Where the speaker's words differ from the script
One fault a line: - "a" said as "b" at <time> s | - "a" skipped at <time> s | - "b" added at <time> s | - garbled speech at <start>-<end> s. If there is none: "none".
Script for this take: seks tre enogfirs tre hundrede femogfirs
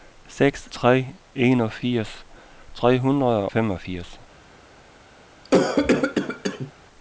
none